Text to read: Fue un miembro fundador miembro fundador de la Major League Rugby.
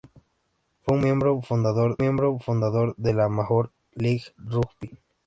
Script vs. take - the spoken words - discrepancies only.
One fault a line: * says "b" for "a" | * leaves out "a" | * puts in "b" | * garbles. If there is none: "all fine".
all fine